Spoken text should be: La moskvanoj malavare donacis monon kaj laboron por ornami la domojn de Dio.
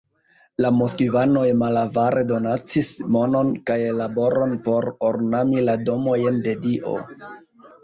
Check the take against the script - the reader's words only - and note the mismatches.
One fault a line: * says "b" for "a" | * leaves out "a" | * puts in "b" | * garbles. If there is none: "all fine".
all fine